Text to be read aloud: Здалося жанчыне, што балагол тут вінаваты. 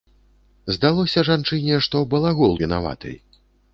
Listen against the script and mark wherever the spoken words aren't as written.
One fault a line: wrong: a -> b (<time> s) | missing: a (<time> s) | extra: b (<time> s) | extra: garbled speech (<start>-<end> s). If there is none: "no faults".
missing: тут (2.6 s)